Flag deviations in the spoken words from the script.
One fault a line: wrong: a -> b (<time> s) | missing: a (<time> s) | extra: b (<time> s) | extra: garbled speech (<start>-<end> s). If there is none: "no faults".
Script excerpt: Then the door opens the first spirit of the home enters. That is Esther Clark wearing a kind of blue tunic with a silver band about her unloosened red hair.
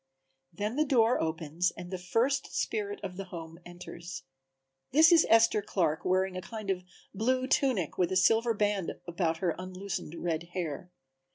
extra: and (1.8 s)
wrong: That -> This (4.9 s)